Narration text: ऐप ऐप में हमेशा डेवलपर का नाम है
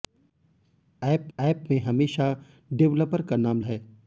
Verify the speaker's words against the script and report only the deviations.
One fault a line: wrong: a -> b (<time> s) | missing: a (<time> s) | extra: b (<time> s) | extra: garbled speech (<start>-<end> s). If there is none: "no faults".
no faults